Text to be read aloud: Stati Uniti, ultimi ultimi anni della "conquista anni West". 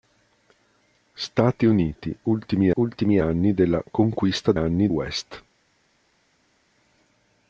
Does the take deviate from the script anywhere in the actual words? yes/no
no